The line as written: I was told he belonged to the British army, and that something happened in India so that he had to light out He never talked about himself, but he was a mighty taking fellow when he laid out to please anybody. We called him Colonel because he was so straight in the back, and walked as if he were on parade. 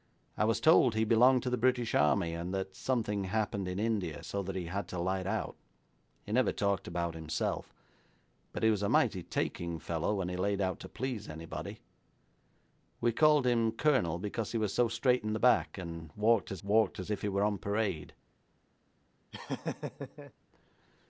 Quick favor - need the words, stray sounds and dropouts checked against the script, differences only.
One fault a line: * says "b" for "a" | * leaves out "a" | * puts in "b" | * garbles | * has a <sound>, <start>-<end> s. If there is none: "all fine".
* puts in "walked as"
* has a laugh, 19.3-20.3 s